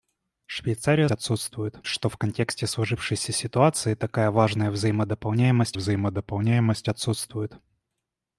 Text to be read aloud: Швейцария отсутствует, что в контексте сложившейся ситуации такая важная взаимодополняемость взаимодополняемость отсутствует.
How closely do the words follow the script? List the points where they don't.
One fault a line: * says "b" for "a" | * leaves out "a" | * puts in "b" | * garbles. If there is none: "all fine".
all fine